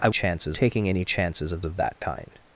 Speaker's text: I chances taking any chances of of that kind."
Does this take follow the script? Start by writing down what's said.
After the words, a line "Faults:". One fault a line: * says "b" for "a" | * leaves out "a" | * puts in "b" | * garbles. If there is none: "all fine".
I chances taking any chances of of that kind."
Faults:
all fine